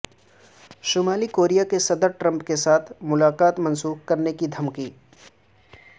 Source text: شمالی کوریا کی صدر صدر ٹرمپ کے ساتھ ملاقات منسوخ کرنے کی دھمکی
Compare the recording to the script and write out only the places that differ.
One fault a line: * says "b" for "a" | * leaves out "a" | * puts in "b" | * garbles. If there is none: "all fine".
* leaves out "صدر"